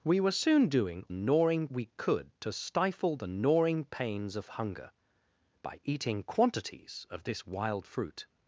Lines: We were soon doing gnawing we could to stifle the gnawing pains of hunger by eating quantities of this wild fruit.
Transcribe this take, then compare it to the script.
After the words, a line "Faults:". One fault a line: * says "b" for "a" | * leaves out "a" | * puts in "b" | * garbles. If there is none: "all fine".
We were soon doing gnawing we could to stifle the gnawing pains of hunger by eating quantities of this wild fruit.
Faults:
all fine